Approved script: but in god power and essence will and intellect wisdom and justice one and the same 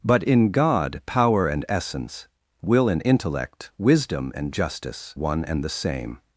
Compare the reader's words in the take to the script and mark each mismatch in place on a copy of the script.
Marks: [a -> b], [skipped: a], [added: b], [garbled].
but in god power and essence will and intellect wisdom and justice one and the same